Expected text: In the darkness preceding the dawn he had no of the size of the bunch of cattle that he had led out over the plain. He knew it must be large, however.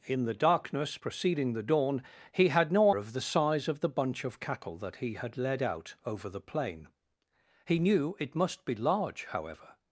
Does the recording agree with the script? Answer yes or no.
yes